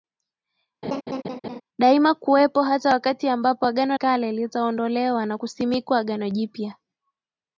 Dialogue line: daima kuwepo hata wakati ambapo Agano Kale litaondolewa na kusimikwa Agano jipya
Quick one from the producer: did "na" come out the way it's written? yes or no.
yes